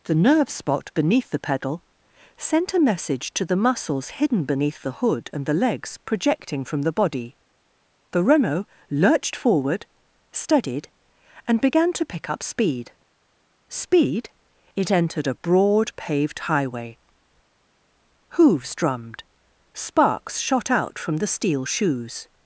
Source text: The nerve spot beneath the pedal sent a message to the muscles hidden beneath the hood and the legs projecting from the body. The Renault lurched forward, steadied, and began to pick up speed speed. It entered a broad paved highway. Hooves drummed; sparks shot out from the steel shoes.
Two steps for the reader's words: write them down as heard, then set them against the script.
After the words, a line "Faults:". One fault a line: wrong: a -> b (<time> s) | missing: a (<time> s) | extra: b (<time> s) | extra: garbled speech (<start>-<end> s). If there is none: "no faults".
The nerve spot beneath the pedal sent a message to the muscles hidden beneath the hood and the legs projecting from the body. The Renault lurched forward, steadied, and began to pick up speed speed. It entered a broad paved highway. Hooves drummed; sparks shot out from the steel shoes.
Faults:
no faults